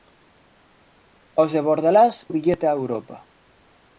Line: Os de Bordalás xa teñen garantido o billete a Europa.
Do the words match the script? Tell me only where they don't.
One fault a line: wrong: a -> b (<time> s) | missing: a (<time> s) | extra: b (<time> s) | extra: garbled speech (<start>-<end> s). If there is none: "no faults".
missing: xa teñen garantido (2.1 s)